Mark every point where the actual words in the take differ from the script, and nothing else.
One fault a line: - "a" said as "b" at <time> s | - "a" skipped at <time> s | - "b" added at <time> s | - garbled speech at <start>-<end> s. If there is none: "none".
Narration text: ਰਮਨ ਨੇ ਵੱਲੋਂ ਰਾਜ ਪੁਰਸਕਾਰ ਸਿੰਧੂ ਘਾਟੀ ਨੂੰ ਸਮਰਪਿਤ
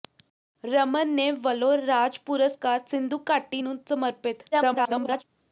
- garbled speech at 4.5-5.2 s